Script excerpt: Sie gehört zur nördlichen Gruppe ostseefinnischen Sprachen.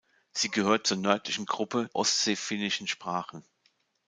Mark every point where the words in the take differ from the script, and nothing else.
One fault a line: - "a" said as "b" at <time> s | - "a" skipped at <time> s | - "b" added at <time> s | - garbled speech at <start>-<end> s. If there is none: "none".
none